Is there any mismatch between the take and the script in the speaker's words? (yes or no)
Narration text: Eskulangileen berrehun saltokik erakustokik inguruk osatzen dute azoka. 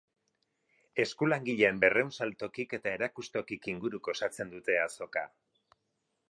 yes